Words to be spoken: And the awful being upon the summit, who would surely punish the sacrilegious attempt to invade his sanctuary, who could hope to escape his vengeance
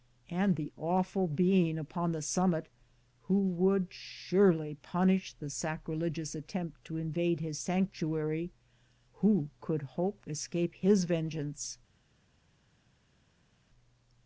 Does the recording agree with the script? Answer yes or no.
no